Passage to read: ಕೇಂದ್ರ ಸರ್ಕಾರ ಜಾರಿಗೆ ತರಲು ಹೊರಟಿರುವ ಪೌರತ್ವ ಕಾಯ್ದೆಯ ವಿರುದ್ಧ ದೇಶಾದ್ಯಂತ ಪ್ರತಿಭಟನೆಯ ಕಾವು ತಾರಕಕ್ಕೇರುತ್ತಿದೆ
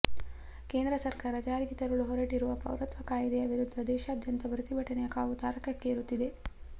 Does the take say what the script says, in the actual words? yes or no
yes